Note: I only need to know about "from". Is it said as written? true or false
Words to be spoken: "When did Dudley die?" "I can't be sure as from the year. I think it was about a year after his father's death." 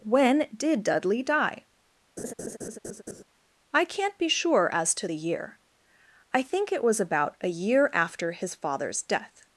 false